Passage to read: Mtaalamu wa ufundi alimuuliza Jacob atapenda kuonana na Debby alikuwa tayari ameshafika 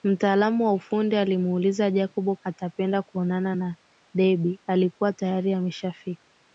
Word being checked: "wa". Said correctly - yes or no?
yes